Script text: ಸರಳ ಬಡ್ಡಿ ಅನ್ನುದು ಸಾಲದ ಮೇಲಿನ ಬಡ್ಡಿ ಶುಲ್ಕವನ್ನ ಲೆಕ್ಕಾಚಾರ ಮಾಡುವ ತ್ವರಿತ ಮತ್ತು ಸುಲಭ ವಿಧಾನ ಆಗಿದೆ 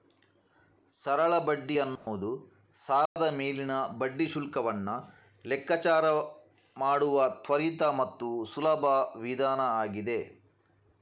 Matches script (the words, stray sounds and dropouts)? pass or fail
fail